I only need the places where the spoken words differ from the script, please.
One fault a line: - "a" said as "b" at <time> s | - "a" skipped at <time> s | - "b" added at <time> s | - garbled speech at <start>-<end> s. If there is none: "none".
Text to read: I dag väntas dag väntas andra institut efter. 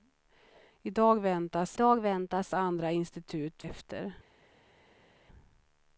none